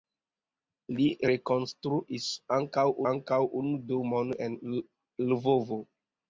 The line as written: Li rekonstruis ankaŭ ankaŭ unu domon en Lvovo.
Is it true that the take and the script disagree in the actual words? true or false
false